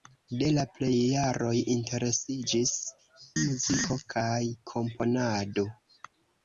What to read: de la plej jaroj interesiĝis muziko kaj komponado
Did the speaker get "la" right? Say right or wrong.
right